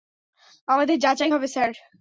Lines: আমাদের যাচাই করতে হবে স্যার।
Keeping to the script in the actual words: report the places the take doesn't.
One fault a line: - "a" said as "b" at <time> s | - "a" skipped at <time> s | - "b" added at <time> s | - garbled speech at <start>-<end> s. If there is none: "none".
- "করতে" skipped at 1.3 s